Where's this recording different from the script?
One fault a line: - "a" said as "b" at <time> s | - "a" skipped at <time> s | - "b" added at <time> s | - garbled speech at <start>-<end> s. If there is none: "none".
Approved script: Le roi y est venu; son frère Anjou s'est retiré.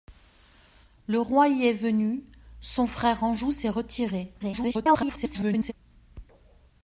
- garbled speech at 4.4-5.7 s